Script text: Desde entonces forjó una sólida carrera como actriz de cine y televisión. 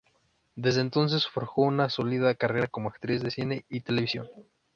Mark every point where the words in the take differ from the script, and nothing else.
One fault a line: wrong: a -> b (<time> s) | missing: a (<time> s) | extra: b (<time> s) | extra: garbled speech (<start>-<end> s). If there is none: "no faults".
no faults